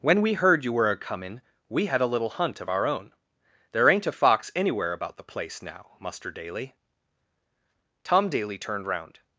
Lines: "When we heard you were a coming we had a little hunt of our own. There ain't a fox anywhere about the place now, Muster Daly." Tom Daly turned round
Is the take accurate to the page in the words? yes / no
yes